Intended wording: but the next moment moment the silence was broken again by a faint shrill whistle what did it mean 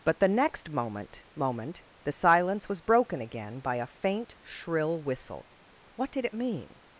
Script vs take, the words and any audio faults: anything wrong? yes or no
no